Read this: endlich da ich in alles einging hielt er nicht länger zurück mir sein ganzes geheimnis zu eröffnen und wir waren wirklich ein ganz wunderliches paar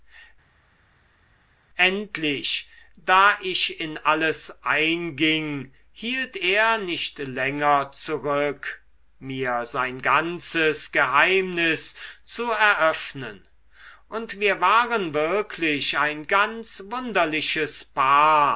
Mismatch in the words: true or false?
false